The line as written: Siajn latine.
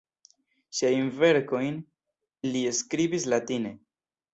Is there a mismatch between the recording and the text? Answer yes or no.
yes